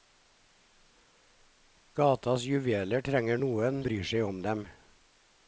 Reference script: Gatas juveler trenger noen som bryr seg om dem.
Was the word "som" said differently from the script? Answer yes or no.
yes